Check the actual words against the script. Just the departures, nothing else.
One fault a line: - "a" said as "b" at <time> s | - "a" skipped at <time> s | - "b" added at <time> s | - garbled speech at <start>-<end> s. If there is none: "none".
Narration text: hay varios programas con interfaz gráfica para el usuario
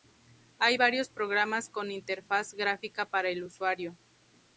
none